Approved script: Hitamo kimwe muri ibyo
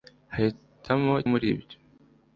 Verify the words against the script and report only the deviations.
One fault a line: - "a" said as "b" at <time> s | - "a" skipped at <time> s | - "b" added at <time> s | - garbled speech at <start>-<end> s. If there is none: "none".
- "kimwe" skipped at 1.1 s